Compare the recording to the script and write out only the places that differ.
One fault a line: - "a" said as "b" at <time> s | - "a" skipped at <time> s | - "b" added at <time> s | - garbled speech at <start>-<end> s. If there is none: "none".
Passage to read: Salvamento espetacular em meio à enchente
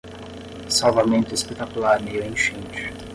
- "em" skipped at 2.0 s